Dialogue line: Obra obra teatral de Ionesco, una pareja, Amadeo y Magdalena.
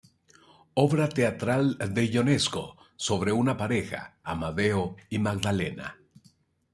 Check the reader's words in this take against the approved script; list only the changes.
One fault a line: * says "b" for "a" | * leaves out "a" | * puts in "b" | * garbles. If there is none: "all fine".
* leaves out "obra"
* puts in "sobre"